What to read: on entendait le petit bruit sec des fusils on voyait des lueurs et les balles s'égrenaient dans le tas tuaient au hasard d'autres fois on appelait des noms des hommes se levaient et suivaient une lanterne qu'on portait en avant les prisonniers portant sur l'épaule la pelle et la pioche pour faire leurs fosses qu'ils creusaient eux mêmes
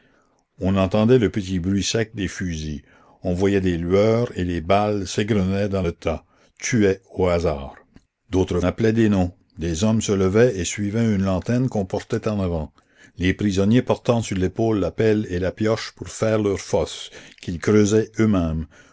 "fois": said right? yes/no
no